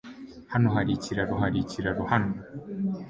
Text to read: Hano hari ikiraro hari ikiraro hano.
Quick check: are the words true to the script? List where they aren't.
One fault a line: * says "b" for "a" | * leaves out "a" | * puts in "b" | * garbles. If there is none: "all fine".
all fine